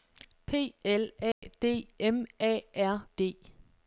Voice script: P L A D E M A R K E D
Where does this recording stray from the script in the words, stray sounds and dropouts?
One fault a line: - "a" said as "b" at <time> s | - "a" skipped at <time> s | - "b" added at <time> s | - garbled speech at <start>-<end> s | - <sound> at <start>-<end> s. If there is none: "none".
- dropout at 1.3-1.4 s
- "E" skipped at 1.9 s
- "K E" skipped at 3.1 s